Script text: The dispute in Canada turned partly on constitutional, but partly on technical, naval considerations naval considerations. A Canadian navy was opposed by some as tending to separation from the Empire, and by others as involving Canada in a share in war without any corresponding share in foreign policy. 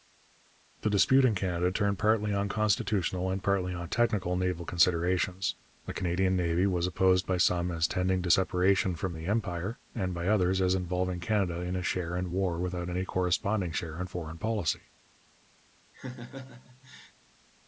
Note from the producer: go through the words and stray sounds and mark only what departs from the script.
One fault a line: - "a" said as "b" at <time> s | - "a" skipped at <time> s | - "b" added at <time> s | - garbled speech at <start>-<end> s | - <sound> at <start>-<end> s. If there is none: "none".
- "but" said as "and" at 3.3 s
- "naval considerations" skipped at 5.6 s
- laugh at 15.9-17.1 s